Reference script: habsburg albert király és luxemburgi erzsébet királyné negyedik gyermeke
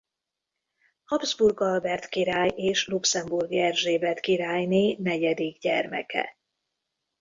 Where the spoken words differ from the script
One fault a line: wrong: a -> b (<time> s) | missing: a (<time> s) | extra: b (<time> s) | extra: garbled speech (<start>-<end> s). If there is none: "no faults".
no faults